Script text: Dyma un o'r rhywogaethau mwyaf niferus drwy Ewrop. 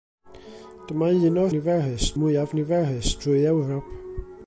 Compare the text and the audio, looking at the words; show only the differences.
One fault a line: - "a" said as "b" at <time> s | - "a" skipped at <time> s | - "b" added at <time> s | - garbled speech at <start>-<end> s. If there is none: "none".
- "rhywogaethau" said as "niferus" at 1.6 s